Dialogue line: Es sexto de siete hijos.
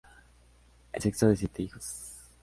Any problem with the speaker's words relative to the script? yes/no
no